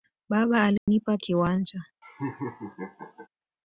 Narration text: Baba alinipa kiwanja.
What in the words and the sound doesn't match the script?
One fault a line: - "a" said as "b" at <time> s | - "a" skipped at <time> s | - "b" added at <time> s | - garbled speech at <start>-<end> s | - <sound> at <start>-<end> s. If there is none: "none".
- dropout at 0.8-0.9 s
- laugh at 2.0-3.3 s